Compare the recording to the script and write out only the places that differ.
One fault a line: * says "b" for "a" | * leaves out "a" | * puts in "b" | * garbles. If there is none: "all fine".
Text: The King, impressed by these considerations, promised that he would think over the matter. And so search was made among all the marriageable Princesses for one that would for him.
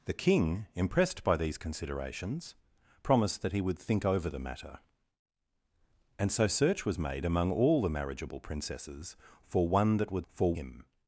all fine